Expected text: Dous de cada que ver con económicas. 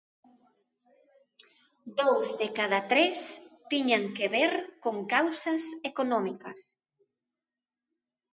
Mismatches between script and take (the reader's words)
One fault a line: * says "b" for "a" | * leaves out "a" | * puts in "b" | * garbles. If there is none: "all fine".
* puts in "tres tiñan"
* puts in "causas"